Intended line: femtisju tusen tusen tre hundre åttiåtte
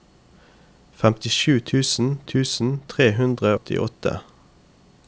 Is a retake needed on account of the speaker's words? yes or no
no